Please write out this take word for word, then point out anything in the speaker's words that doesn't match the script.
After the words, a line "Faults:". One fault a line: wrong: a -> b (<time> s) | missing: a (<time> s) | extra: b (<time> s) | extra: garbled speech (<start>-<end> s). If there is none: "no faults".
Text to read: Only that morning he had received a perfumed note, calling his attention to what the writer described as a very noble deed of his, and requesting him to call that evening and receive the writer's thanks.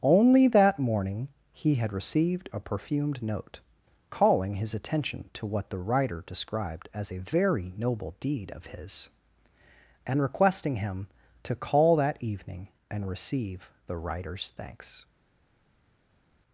Only that morning he had received a perfumed note, calling his attention to what the writer described as a very noble deed of his, and requesting him to call that evening and receive the writer's thanks.
Faults:
no faults